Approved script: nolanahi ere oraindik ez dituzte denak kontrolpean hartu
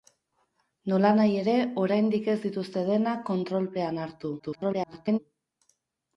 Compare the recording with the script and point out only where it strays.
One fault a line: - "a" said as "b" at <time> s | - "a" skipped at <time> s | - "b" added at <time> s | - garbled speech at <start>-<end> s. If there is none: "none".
- garbled speech at 4.4-5.2 s